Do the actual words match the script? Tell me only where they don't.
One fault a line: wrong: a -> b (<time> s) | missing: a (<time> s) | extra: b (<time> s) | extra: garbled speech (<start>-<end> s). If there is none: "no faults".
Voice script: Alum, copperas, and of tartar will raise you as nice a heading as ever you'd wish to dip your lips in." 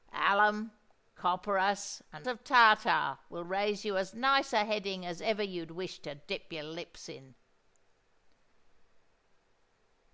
no faults